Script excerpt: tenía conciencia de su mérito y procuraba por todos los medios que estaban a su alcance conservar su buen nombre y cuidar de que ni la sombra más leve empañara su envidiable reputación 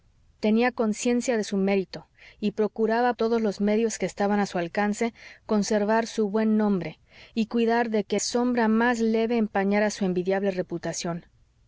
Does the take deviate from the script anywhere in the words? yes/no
yes